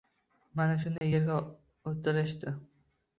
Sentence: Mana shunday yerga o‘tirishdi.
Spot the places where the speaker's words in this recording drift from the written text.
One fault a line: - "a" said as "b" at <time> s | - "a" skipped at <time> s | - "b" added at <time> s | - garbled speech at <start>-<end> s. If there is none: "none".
none